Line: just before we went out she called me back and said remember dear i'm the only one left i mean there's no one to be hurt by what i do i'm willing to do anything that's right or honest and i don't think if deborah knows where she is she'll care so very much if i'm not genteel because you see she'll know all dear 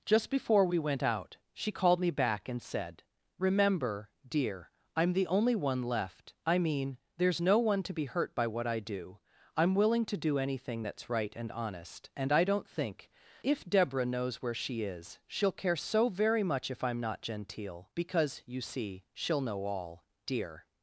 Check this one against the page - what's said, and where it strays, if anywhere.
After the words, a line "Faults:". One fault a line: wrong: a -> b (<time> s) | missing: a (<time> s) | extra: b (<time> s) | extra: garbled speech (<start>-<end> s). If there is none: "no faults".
just before we went out she called me back and said remember dear i'm the only one left i mean there's no one to be hurt by what i do i'm willing to do anything that's right and honest and i don't think if deborah knows where she is she'll care so very much if i'm not genteel because you see she'll know all dear
Faults:
wrong: or -> and (11.3 s)